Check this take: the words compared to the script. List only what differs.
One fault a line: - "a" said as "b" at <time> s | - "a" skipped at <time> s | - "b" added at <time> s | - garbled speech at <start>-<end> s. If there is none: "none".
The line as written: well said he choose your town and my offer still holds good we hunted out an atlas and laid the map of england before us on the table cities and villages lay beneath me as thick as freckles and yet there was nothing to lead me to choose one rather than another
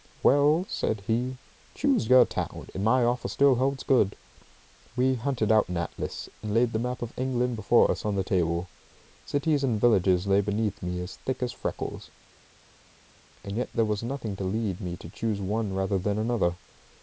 none